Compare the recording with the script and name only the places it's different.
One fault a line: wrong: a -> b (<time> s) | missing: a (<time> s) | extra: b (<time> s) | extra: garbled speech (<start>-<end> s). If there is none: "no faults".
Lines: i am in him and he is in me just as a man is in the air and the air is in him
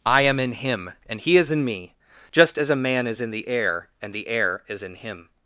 no faults